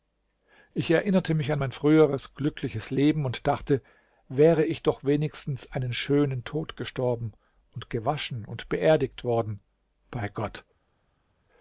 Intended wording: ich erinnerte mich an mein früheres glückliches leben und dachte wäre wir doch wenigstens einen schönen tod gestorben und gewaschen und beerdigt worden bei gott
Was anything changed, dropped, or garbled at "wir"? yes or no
yes